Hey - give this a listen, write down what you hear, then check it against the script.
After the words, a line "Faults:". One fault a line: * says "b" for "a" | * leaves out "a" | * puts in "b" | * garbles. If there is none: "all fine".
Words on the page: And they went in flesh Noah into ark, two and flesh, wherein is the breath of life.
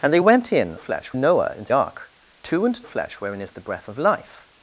And they went in flesh Noah into ark, two and flesh, wherein is the breath of life.
Faults:
all fine